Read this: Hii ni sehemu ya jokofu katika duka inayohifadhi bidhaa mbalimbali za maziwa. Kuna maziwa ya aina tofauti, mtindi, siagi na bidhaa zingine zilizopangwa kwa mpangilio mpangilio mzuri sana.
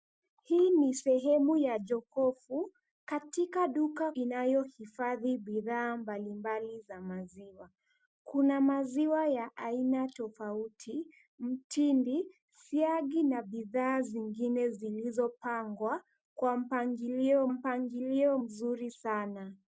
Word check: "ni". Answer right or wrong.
right